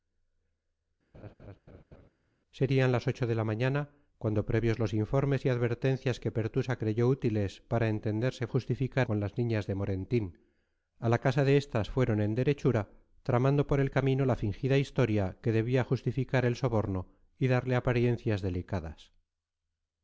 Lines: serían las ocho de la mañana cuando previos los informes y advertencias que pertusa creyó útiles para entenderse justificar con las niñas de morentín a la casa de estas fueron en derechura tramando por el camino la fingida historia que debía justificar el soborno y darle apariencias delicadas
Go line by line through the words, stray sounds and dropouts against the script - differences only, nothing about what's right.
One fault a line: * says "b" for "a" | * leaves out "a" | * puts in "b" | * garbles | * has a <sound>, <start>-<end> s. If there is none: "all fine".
* has a laugh, 1.1-2.1 s